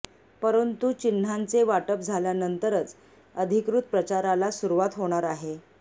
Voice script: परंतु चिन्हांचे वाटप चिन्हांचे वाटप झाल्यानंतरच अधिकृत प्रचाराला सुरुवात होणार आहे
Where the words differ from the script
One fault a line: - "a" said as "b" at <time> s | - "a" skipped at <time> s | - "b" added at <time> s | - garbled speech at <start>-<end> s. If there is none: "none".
- "चिन्हांचे वाटप" skipped at 2.0 s